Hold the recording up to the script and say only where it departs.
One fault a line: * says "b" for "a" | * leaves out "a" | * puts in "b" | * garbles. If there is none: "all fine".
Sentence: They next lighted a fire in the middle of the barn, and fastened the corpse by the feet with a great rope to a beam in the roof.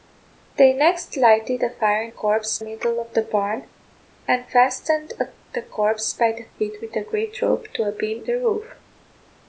* says "corpse" for "the"
* leaves out "in"